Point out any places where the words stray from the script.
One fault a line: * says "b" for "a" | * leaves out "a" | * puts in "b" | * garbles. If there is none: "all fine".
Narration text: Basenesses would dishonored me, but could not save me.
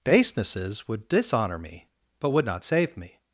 * says "dishonor" for "dishonored"
* says "would" for "could"